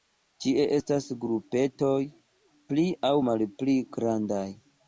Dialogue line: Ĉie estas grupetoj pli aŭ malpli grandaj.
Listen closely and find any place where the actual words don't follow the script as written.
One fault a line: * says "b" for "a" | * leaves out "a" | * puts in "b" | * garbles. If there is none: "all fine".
all fine